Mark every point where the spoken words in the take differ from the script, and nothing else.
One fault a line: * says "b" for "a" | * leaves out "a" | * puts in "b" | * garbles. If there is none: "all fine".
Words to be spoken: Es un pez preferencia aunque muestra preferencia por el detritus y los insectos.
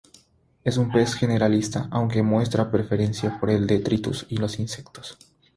* says "generalista" for "preferencia"